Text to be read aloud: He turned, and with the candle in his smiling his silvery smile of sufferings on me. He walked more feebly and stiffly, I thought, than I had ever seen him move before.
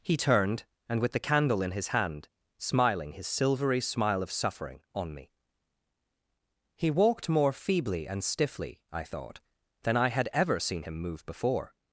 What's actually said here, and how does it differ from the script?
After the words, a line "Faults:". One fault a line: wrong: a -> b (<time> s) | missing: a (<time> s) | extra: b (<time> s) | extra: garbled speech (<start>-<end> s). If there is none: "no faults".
He turned, and with the candle in his hand, smiling his silvery smile of suffering on me. He walked more feebly and stiffly, I thought, than I had ever seen him move before.
Faults:
extra: hand (1.9 s)
wrong: sufferings -> suffering (4.3 s)